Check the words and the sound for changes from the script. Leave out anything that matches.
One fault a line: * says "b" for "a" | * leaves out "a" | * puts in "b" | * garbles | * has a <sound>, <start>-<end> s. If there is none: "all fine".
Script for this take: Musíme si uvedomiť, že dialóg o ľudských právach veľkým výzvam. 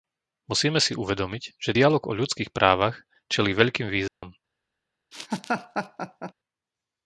* puts in "čelí"
* has a dropout, 4.1-4.2 s
* has a laugh, 5.1-6.3 s